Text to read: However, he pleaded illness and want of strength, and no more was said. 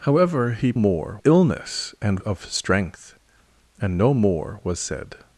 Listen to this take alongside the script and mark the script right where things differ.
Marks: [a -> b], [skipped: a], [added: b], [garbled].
However, he [pleaded -> more] illness and [skipped: want] of strength, and no more was said.